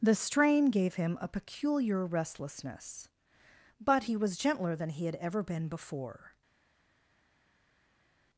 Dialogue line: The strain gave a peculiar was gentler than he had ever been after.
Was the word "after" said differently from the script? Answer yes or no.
yes